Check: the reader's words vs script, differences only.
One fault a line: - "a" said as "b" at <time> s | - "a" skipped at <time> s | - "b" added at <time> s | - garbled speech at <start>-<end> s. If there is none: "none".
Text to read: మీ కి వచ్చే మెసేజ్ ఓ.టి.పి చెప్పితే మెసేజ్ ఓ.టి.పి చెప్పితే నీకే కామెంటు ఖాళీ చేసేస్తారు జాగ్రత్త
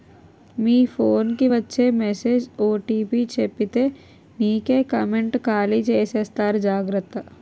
- "ఫోన్" added at 0.9 s
- "మెసేజ్ ఓ.టి.పి చెప్పితే" skipped at 3.8 s